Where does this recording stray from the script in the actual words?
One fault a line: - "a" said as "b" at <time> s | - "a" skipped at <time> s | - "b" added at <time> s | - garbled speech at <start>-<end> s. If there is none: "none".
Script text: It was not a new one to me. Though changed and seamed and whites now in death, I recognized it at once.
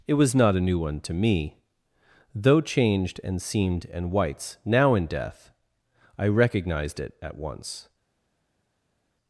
none